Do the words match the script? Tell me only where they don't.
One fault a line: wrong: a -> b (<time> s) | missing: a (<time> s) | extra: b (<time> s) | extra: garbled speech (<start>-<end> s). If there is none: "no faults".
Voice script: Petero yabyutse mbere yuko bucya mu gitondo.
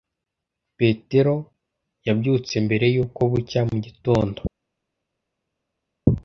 no faults